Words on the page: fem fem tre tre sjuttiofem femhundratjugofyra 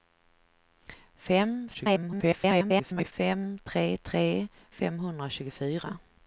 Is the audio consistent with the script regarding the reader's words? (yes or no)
no